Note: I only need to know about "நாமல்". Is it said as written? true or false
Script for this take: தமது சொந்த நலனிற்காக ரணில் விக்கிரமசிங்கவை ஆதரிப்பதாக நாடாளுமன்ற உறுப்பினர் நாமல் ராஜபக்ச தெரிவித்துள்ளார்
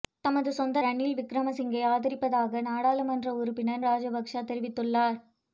false